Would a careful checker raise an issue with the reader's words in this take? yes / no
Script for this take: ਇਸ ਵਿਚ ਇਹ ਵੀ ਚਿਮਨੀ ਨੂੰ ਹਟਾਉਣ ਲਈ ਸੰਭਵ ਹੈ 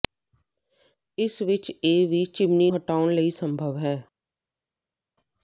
yes